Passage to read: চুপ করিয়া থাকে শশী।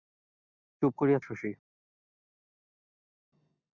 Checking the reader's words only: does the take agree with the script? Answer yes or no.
no